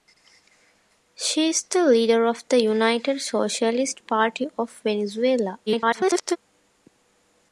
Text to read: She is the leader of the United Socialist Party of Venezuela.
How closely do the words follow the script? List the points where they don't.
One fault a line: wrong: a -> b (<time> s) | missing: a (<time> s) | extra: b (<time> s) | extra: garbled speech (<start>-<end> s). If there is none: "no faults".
extra: garbled speech (5.7-6.4 s)